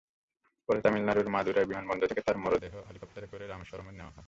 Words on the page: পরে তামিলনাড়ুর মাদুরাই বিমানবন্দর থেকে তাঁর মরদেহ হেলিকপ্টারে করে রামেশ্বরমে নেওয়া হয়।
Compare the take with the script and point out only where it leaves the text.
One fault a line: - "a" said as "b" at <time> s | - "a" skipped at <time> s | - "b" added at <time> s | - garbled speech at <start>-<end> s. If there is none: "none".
none